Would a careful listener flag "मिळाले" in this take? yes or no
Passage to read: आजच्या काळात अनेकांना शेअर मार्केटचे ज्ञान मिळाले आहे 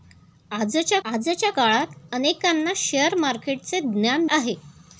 yes